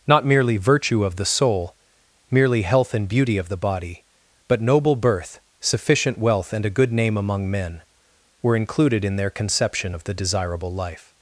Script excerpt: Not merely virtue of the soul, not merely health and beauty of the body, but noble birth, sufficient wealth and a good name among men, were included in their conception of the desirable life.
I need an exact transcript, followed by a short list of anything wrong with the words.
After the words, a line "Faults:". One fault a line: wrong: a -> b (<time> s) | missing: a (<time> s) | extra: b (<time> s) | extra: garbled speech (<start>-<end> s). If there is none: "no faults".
Not merely virtue of the soul, merely health and beauty of the body, but noble birth, sufficient wealth and a good name among men, were included in their conception of the desirable life.
Faults:
missing: not (1.8 s)